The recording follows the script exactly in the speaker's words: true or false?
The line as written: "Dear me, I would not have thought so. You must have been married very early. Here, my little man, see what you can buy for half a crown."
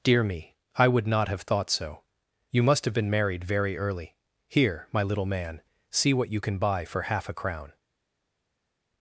true